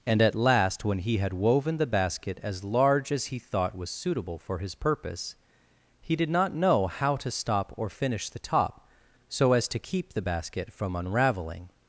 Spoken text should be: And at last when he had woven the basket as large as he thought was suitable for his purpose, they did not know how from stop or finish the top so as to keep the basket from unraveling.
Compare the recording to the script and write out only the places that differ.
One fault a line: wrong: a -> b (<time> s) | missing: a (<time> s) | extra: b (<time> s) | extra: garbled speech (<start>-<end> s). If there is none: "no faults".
wrong: they -> he (6.0 s)
wrong: from -> to (7.2 s)